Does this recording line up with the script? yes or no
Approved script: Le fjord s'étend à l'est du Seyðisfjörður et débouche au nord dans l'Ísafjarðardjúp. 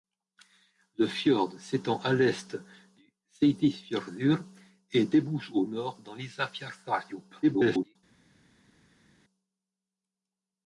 no